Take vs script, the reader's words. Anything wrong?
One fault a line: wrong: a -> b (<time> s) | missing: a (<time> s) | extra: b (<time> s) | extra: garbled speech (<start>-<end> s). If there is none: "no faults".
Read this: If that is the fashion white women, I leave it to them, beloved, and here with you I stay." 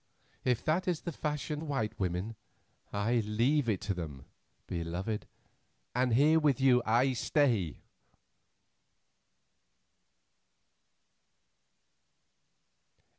no faults